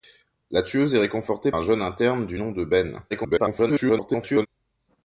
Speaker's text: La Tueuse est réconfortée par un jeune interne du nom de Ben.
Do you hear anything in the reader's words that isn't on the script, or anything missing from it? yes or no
yes